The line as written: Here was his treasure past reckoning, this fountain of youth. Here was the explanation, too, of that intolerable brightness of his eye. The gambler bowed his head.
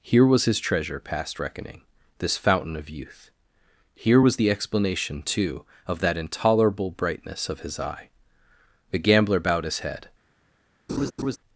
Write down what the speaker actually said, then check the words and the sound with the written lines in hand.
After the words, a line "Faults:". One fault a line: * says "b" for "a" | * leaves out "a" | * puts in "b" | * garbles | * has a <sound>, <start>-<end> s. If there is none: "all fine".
Here was his treasure past reckoning, this fountain of youth. Here was the explanation, too, of that intolerable brightness of his eye. The gambler bowed his head.
Faults:
* has a laugh, 10.9-11.4 s